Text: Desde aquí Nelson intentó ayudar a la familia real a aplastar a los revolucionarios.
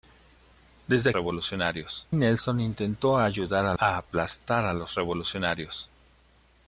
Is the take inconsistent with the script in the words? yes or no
yes